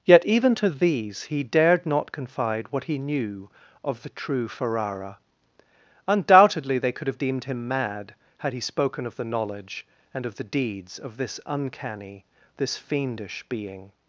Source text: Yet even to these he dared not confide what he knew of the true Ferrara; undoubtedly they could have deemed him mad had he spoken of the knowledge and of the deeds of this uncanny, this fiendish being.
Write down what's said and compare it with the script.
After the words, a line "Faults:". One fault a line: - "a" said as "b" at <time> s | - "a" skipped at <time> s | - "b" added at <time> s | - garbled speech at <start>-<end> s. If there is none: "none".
Yet even to these he dared not confide what he knew of the true Ferrara; undoubtedly they could have deemed him mad had he spoken of the knowledge and of the deeds of this uncanny, this fiendish being.
Faults:
none